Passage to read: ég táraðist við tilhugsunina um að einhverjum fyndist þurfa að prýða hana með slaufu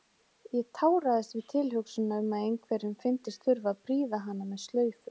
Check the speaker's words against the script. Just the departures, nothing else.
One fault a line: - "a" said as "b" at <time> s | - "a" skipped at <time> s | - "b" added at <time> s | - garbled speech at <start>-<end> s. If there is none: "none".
none